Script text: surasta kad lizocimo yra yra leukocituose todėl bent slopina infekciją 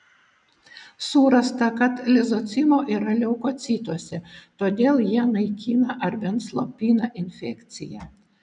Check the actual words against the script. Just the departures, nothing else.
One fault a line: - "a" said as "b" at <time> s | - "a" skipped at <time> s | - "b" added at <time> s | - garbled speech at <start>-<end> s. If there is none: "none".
- "yra" skipped at 3.1 s
- "jie naikina ar" added at 5.1 s